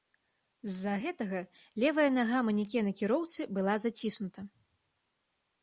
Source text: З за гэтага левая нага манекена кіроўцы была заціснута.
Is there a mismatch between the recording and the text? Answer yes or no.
no